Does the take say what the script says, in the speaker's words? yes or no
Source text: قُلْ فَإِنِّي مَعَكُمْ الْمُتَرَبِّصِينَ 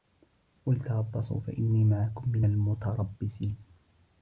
no